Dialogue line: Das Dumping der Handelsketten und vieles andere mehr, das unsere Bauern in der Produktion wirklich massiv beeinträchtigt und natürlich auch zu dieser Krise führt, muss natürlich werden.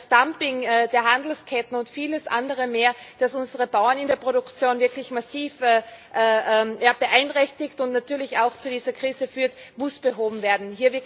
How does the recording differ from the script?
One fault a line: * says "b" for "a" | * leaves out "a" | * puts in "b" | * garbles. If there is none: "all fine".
* says "behoben" for "natürlich"